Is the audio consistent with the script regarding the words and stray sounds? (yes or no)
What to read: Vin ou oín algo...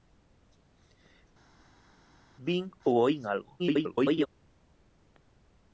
no